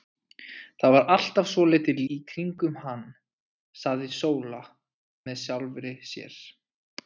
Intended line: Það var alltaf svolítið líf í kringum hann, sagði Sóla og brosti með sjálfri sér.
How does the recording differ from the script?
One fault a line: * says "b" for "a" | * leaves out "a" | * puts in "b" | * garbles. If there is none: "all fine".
* leaves out "líf"
* leaves out "og brosti"